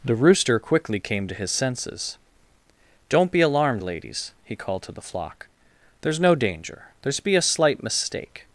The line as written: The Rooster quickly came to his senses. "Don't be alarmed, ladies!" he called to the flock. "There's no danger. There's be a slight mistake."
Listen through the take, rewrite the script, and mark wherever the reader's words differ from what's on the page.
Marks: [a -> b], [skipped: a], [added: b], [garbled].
The Rooster quickly came to his senses. "Don't be alarmed, ladies!" he called to the flock. "There's no danger. There's be a slight mistake."